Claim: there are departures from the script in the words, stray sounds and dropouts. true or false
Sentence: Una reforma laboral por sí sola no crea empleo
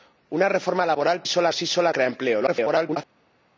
true